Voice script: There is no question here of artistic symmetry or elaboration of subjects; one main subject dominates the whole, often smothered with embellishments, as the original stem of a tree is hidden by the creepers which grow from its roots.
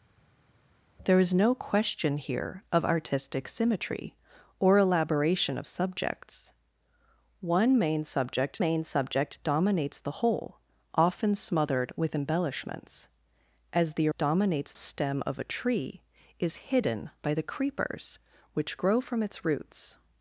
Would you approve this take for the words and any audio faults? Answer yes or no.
no